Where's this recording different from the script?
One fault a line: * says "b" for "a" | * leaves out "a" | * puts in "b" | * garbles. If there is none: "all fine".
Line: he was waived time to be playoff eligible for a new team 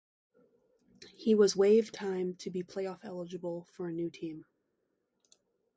all fine